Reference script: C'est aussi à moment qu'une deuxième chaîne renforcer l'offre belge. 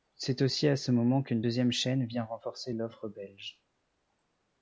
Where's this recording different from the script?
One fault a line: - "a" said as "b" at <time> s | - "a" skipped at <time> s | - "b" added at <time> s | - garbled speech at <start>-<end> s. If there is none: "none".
- "ce" added at 0.8 s
- "vient" added at 2.1 s